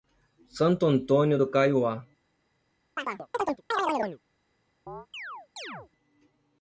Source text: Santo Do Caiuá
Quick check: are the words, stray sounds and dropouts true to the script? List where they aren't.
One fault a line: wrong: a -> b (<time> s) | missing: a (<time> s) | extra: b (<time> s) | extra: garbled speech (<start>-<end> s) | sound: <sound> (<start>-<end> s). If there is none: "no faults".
extra: Antônio (0.9 s)
sound: chirp (3.0-4.2 s)
sound: chirp (4.9-5.9 s)